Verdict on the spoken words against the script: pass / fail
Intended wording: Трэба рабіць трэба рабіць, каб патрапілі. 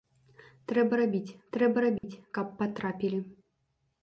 pass